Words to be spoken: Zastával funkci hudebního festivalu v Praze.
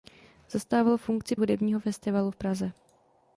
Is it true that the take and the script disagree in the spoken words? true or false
false